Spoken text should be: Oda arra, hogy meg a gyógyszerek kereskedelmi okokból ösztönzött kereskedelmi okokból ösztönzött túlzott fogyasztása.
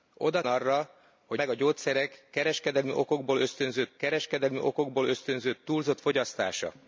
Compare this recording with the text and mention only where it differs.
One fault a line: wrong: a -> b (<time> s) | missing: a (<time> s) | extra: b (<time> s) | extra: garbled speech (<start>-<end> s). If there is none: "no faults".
no faults